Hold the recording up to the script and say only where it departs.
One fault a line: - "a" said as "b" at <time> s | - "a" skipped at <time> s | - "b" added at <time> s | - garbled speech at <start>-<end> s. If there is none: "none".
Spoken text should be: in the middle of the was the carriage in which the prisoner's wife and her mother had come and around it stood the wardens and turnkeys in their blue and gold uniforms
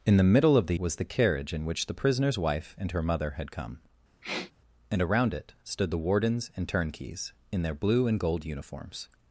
none